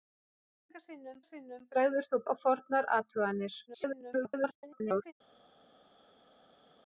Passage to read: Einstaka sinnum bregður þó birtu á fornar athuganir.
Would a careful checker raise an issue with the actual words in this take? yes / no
yes